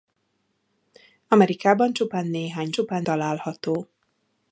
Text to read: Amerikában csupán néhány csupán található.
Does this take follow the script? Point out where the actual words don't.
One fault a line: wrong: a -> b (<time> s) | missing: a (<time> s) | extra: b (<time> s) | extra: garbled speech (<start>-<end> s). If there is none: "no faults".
no faults